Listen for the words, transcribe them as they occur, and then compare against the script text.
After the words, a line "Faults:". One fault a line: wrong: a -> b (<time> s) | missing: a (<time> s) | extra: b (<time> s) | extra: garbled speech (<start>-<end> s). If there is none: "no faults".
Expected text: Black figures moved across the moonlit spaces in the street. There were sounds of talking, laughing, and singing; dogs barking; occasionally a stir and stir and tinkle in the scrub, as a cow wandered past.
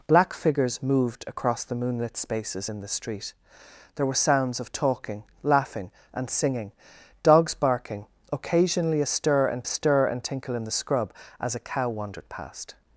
Black figures moved across the moonlit spaces in the street. There were sounds of talking, laughing, and singing; dogs barking; occasionally a stir and stir and tinkle in the scrub, as a cow wandered past.
Faults:
no faults